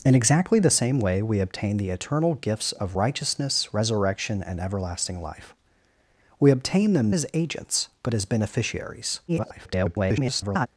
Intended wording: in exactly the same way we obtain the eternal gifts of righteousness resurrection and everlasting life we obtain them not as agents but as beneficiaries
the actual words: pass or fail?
fail